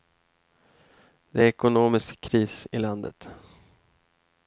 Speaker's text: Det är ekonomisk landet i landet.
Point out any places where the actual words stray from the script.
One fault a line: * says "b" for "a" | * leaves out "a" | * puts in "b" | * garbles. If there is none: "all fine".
* says "kris" for "landet"